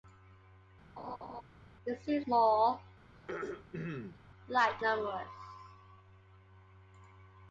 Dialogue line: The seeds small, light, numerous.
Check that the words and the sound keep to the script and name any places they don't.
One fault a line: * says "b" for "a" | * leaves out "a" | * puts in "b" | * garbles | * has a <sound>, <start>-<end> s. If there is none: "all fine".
* has a laugh, 1.0-1.4 s
* has a throat clearing, 3.1-4.2 s